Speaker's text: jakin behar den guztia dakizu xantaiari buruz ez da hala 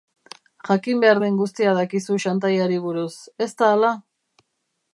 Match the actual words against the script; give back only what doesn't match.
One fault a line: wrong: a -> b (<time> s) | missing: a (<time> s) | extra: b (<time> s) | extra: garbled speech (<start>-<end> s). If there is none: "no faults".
no faults